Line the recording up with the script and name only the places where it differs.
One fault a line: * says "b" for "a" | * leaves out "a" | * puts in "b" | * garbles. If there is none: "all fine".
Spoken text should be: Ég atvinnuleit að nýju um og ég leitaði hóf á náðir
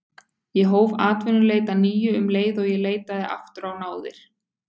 * puts in "hóf"
* puts in "leið"
* says "aftur" for "hóf"